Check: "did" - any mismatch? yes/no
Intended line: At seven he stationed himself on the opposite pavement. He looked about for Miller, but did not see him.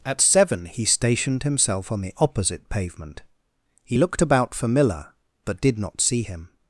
no